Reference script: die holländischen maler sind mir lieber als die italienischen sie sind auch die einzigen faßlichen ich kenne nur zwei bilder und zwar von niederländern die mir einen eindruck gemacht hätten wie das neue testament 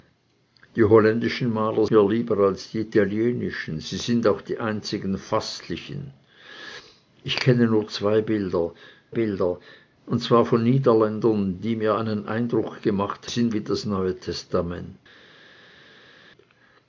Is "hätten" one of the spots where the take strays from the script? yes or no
yes